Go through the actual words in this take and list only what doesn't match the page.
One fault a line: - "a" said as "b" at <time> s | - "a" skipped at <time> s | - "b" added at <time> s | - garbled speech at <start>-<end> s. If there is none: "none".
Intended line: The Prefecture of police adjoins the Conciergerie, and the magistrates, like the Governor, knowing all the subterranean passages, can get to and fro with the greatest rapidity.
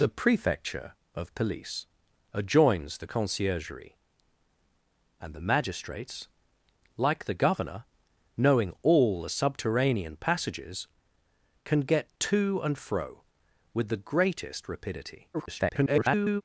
- garbled speech at 15.3-16.4 s